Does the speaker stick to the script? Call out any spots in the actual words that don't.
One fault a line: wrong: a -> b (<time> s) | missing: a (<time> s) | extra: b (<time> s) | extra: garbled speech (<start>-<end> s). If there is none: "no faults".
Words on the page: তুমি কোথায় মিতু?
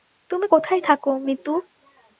extra: থাকো (0.8 s)